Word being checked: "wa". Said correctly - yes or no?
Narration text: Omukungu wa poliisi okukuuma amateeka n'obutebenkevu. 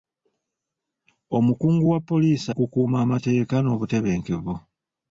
yes